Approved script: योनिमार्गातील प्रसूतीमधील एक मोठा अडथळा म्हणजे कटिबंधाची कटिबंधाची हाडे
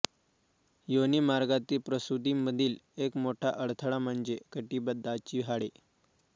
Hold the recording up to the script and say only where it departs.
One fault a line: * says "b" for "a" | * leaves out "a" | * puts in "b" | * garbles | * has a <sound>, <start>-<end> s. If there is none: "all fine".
* leaves out "कटिबंधाची"